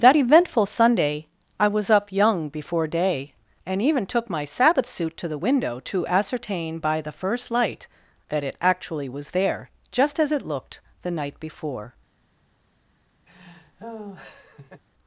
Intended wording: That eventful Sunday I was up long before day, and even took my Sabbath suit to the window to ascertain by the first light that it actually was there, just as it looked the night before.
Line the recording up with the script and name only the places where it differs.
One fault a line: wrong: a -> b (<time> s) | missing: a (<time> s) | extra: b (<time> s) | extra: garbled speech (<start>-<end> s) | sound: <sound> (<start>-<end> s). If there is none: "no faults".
wrong: long -> young (2.1 s)
sound: laugh (13.3-14.8 s)